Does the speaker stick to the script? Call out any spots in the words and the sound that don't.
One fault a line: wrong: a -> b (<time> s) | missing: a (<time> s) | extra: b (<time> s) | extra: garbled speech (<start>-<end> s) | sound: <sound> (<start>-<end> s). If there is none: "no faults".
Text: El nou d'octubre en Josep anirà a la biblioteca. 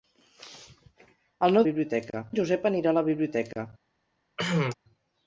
wrong: d'octubre -> biblioteca (1.7 s)
sound: cough (4.4-4.7 s)